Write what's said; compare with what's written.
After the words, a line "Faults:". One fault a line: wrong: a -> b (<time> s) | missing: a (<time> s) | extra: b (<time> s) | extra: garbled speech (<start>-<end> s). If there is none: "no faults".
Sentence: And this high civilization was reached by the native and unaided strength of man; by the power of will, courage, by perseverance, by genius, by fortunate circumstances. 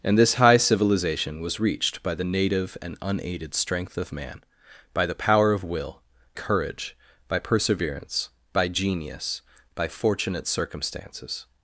And this high civilization was reached by the native and unaided strength of man; by the power of will, courage, by perseverance, by genius, by fortunate circumstances.
Faults:
no faults